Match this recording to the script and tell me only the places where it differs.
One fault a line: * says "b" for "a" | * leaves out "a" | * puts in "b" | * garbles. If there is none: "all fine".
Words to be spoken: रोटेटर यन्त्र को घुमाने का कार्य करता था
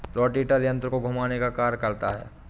* says "है" for "था"